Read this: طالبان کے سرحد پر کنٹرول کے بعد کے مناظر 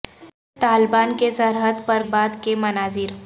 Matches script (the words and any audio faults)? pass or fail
fail